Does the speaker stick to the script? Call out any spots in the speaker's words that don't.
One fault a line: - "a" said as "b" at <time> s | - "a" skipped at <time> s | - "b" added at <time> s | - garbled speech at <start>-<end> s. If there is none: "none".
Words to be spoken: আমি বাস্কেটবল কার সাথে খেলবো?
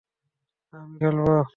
- "বাস্কেটবল কার সাথে" skipped at 1.0 s